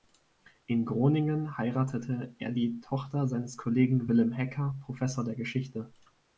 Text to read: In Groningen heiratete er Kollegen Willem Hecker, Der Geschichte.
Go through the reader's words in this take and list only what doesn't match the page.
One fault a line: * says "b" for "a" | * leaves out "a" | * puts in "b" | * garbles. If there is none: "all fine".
* puts in "die Tochter seines"
* puts in "Professor"